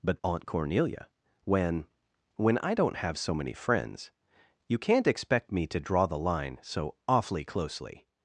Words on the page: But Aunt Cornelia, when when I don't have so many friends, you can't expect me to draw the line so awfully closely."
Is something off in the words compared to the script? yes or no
no